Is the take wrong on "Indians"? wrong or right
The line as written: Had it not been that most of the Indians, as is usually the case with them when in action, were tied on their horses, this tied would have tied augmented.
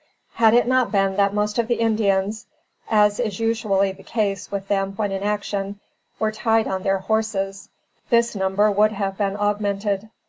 right